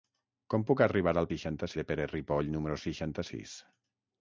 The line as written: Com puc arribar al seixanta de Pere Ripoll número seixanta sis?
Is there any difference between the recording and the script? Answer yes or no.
no